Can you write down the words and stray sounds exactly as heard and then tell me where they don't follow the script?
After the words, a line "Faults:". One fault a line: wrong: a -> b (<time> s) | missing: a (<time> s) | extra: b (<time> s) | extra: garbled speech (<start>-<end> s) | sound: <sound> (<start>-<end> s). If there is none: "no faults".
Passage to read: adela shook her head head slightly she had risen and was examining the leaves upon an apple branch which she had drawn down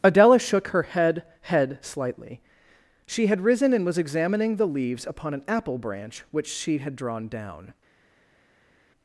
adela shook her head head slightly she had risen and was examining the leaves upon an apple branch which she had drawn down
Faults:
no faults